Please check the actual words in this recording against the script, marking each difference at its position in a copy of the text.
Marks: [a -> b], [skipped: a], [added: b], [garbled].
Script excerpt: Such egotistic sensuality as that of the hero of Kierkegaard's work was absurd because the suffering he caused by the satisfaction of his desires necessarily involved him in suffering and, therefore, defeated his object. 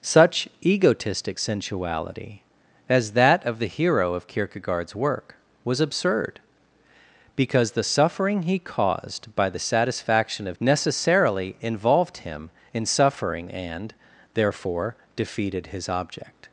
Such egotistic sensuality as that of the hero of Kierkegaard's work was absurd because the suffering he caused by the satisfaction of [skipped: his desires] necessarily involved him in suffering and, therefore, defeated his object.